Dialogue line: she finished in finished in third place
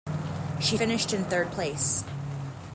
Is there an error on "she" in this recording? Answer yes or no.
no